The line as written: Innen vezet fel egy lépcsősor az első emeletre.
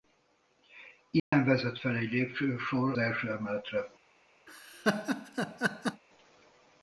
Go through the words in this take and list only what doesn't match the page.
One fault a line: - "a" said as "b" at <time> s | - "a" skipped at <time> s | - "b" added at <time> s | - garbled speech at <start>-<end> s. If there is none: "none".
- "az" skipped at 2.9 s